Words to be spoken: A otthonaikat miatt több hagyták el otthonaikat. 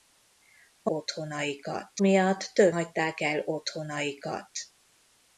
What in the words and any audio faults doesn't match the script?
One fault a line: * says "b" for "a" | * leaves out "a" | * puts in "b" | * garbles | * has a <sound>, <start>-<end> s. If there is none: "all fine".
all fine